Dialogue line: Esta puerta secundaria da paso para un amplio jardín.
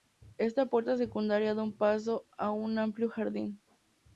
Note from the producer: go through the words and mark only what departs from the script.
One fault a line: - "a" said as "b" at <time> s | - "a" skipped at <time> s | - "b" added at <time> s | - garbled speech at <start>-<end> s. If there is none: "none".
- "para" said as "a" at 2.4 s